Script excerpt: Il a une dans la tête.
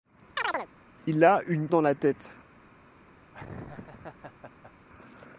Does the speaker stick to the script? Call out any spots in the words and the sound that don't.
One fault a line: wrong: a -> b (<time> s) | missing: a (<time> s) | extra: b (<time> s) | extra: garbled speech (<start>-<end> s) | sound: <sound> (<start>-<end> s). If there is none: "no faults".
sound: chirp (0.4-0.7 s)
sound: laugh (3.3-4.7 s)